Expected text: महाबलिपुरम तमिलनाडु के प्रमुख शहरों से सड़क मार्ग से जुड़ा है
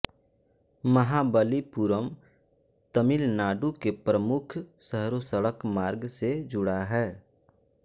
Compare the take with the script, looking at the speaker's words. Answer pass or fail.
fail